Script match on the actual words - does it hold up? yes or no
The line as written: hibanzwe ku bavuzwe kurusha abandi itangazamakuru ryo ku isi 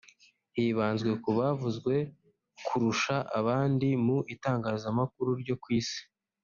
no